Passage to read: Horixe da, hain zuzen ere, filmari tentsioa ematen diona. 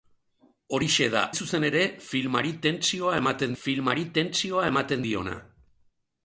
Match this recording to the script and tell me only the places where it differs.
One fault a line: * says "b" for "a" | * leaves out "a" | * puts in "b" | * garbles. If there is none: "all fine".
* leaves out "hain"
* puts in "filmari tentsioa ematen"